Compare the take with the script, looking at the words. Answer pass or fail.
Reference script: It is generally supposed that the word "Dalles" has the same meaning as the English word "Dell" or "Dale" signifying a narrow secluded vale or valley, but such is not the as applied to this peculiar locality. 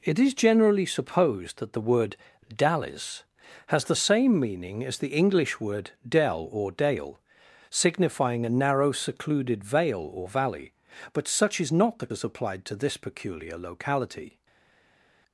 pass